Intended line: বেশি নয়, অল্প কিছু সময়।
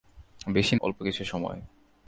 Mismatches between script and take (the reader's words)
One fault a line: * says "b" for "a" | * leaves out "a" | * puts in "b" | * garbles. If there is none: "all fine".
* leaves out "নয়"